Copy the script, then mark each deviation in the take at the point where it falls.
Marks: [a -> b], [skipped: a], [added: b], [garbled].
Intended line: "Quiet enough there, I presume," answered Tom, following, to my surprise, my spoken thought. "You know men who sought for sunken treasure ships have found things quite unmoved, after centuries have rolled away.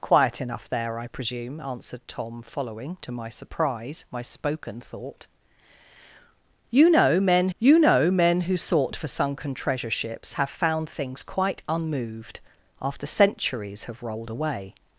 "Quiet enough there, I presume," answered Tom, following, to my surprise, my spoken thought. "You know men [added: you know men] who sought for sunken treasure ships have found things quite unmoved, after centuries have rolled away.